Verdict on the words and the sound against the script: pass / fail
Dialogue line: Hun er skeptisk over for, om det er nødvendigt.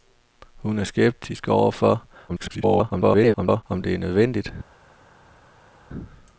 fail